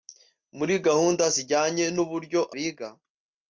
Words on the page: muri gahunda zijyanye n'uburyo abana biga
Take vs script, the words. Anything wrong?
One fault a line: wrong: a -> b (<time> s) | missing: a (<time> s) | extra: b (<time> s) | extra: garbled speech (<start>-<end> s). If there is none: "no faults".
missing: abana (2.4 s)